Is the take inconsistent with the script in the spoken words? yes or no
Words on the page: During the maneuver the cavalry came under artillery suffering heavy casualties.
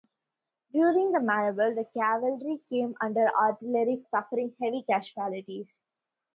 no